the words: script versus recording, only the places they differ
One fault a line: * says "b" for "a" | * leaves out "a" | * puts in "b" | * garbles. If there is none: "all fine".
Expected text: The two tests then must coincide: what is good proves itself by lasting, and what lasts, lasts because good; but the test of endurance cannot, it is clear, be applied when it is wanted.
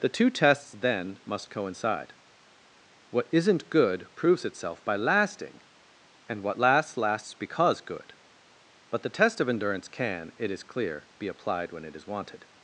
* says "isn't" for "is"
* says "can" for "cannot"